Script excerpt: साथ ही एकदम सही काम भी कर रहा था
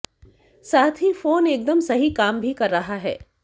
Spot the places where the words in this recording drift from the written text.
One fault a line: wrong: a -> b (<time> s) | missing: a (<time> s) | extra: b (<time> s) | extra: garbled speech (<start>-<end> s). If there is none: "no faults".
extra: फोन (1.1 s)
wrong: था -> है (3.0 s)